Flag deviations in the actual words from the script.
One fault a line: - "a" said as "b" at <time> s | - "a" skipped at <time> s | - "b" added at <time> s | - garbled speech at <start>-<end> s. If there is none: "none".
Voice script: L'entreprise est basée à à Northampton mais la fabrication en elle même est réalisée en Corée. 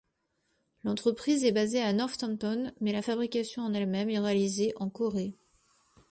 - "à" skipped at 1.9 s